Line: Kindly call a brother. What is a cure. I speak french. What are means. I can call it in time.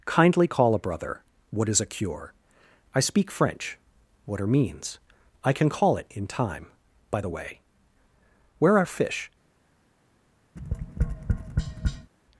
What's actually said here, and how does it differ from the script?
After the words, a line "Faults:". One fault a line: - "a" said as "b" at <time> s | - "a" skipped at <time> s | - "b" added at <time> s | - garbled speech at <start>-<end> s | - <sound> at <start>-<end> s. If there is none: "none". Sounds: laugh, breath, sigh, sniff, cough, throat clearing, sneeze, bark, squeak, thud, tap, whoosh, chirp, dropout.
Kindly call a brother. What is a cure. I speak french. What are means. I can call it in time. By the way where are fish
Faults:
- "By the way where are fish" added at 7.1 s
- tap at 10.6-12.1 s